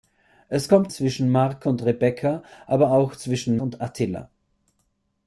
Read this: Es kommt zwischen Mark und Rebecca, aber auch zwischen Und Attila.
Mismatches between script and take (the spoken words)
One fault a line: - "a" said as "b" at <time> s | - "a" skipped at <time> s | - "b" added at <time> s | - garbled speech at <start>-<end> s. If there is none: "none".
none